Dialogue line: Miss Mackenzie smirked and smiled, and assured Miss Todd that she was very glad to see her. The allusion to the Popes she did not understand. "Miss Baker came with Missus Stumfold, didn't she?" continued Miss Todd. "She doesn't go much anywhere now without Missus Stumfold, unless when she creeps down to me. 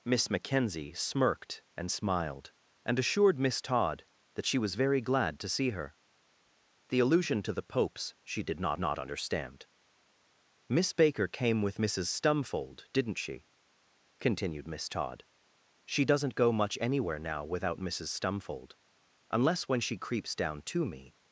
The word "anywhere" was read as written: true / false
true